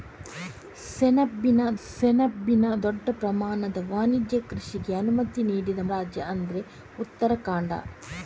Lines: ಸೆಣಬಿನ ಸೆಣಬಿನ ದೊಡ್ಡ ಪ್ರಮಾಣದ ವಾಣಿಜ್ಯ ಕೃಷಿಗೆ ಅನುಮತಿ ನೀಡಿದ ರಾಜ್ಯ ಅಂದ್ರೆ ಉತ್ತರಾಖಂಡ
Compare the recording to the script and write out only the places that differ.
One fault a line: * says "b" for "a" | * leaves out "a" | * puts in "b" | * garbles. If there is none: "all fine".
all fine